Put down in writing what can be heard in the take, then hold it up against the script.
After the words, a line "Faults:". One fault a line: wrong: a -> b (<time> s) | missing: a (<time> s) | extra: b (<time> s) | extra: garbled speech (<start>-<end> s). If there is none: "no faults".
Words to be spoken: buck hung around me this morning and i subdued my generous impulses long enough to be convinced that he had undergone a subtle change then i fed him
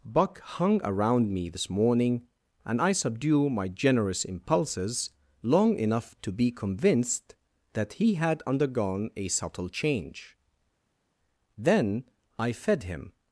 buck hung around me this morning and i subdue my generous impulses long enough to be convinced that he had undergone a subtle change then i fed him
Faults:
wrong: subdued -> subdue (2.9 s)